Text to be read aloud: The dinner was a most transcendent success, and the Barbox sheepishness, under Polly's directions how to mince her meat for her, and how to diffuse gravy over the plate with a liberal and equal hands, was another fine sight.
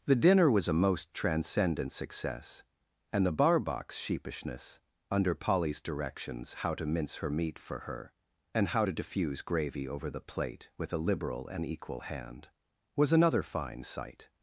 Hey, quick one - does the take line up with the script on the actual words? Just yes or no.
no